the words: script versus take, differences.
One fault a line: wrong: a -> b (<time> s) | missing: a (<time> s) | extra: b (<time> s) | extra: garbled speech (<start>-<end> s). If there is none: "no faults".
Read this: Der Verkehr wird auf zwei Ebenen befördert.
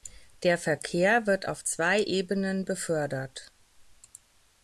no faults